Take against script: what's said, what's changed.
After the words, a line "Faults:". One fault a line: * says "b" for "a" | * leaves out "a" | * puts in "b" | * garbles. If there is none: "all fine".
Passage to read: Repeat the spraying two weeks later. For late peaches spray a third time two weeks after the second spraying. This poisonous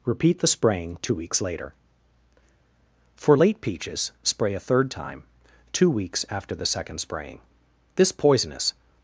Repeat the spraying two weeks later. For late peaches spray a third time two weeks after the second spraying. This poisonous
Faults:
all fine